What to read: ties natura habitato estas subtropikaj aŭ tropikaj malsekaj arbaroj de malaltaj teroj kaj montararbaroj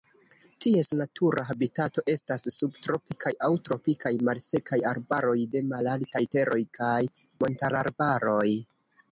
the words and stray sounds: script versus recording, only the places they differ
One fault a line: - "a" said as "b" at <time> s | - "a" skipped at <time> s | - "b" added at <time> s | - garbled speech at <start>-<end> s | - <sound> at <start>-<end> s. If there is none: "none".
none